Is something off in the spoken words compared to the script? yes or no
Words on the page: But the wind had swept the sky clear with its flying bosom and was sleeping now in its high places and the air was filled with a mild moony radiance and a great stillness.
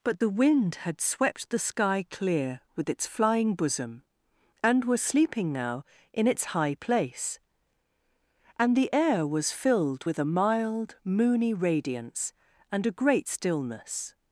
yes